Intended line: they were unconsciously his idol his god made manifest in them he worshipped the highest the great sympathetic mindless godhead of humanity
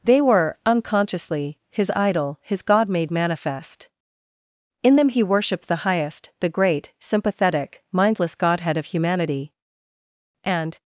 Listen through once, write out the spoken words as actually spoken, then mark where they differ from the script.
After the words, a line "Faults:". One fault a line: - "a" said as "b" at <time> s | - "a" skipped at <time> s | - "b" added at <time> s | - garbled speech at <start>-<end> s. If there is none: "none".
they were unconsciously his idol his god made manifest in them he worshipped the highest the great sympathetic mindless godhead of humanity and
Faults:
- "and" added at 10.4 s